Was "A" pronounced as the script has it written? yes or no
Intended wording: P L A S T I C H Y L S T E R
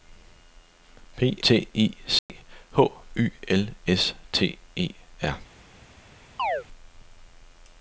no